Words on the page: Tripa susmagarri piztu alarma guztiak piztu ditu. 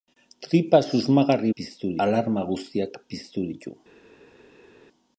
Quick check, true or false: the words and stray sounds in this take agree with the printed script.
true